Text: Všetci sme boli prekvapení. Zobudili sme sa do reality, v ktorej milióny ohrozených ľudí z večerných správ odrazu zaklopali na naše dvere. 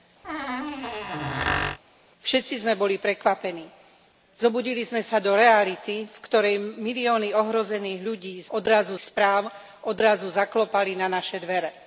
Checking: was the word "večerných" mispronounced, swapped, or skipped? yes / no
yes